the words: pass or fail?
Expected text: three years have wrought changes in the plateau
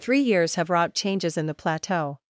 pass